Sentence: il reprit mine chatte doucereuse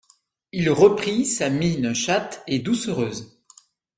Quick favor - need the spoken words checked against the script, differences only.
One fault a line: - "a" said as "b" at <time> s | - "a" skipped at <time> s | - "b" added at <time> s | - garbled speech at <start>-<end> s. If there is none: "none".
- "sa" added at 1.3 s
- "et" added at 2.4 s